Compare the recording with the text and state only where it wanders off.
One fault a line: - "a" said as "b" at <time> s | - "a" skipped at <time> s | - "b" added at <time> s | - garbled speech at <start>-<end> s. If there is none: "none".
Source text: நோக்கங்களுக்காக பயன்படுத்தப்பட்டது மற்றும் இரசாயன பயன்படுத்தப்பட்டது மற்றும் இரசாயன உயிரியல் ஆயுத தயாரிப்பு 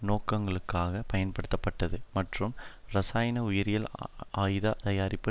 - "பயன்படுத்தப்பட்டது மற்றும் இரசாயன" skipped at 3.4 s